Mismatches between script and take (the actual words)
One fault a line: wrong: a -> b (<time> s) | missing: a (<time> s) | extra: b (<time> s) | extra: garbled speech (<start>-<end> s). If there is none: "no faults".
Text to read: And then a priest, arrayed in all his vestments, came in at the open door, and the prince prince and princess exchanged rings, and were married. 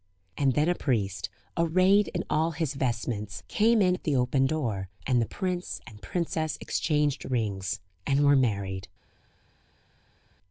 missing: prince (5.8 s)